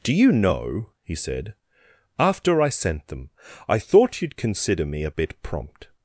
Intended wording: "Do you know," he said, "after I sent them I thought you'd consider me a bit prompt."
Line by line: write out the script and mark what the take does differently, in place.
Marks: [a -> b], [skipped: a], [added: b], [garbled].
"Do you know," he said, "after I sent them I thought you'd consider me a bit prompt."